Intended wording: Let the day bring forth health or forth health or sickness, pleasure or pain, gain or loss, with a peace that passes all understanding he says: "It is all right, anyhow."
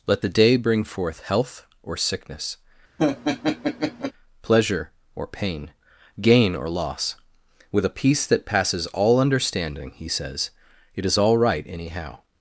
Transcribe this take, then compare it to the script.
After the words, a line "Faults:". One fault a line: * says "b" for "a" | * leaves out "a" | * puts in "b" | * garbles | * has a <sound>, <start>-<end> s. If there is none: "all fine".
Let the day bring forth health or sickness, pleasure or pain, gain or loss, with a peace that passes all understanding he says: "It is all right, anyhow."
Faults:
* leaves out "forth health or"
* has a laugh, 3.0-4.1 s